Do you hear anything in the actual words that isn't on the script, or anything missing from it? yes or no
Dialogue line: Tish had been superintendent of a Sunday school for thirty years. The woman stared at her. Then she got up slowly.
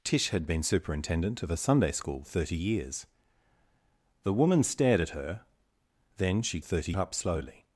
yes